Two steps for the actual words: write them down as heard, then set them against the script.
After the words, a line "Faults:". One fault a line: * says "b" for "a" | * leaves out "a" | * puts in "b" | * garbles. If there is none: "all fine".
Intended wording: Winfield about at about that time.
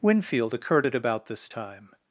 Winfield occurred at about this time.
Faults:
* says "occurred" for "about"
* says "this" for "that"